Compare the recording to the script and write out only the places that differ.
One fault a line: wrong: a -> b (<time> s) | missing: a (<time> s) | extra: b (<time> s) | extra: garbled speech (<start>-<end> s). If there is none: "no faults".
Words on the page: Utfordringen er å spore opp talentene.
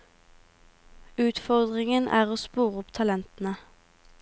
no faults